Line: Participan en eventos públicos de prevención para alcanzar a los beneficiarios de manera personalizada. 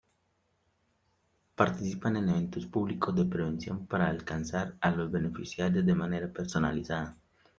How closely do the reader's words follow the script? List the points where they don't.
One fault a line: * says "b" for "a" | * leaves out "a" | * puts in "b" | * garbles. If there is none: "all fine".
all fine